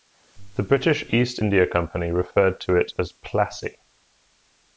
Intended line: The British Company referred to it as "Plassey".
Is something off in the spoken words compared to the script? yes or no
yes